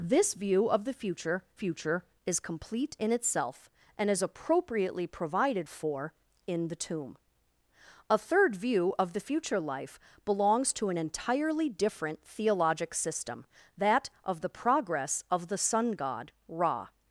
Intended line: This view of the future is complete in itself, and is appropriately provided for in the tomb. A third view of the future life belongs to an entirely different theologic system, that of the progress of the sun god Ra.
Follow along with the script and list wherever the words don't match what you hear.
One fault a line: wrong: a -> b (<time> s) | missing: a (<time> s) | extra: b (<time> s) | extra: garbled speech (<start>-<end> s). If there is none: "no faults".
extra: future (1.5 s)